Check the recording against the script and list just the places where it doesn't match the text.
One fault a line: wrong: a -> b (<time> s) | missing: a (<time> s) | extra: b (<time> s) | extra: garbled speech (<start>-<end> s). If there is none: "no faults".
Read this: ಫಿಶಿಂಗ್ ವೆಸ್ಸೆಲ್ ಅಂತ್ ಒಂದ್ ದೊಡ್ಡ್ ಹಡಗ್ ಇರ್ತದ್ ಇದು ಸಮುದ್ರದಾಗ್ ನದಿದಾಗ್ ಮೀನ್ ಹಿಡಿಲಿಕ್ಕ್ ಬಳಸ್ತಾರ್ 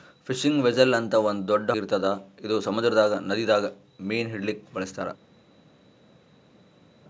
missing: ಹಡಗ್ (1.7 s)